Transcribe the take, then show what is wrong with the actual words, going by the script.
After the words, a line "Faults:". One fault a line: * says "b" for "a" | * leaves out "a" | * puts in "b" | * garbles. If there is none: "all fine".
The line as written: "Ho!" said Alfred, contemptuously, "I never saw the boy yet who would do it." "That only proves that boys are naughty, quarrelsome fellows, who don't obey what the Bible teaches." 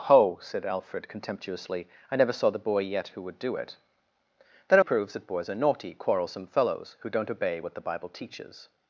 "Ho!" said Alfred, contemptuously, "I never saw the boy yet who would do it." "That proves that boys are naughty, quarrelsome fellows, who don't obey what the Bible teaches."
Faults:
* leaves out "only"